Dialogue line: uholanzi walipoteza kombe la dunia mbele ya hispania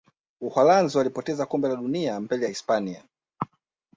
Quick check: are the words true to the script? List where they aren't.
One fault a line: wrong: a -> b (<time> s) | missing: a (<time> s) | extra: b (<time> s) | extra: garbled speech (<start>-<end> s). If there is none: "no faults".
no faults